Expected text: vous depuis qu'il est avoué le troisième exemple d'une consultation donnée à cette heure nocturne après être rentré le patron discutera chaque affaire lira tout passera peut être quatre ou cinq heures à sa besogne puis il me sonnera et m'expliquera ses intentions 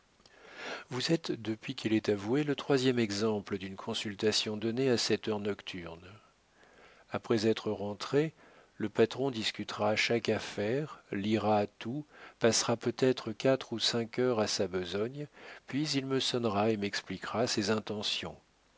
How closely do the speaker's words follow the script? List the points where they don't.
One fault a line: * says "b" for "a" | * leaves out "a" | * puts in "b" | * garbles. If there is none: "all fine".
* puts in "êtes"